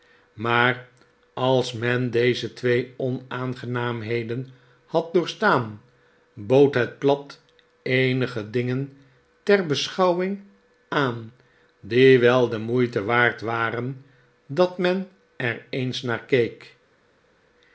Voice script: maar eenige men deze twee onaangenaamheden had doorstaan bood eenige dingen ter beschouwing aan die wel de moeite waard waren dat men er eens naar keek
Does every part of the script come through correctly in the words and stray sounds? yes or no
no